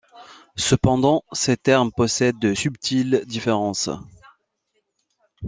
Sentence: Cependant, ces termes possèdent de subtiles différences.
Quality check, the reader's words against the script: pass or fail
pass